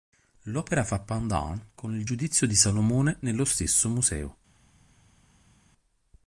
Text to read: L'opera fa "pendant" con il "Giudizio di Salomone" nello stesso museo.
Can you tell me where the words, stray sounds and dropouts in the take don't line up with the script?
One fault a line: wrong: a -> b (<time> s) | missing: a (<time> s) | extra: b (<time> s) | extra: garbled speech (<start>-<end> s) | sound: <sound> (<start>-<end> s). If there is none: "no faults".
no faults